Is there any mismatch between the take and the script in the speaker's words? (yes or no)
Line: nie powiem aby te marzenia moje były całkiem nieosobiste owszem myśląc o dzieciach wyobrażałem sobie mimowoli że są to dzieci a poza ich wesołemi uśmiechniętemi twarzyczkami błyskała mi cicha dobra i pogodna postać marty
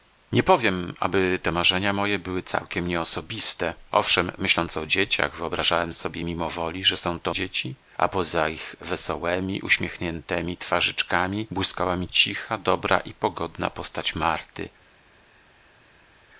no